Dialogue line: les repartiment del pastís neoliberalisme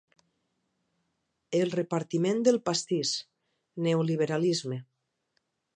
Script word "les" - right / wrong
wrong